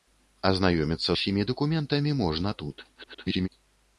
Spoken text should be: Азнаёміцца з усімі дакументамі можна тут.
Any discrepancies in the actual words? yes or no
yes